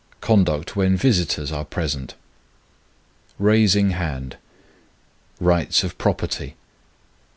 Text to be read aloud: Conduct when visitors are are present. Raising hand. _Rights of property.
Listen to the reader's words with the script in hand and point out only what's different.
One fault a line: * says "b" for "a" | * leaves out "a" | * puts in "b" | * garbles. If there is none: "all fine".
* leaves out "are"